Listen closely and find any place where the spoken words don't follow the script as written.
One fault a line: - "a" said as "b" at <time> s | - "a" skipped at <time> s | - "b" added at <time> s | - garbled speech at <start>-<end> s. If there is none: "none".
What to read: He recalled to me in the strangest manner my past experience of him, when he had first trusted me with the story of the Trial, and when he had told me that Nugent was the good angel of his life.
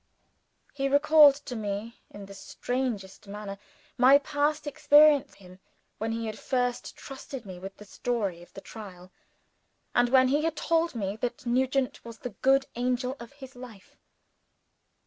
- "of" skipped at 5.3 s